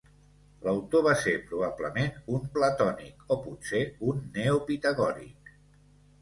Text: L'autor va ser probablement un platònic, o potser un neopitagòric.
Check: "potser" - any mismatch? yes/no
no